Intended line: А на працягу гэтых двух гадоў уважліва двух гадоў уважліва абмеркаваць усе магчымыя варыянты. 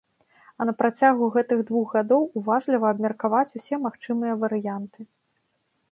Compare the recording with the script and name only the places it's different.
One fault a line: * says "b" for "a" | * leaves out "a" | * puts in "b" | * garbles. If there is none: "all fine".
* leaves out "двух гадоў уважліва"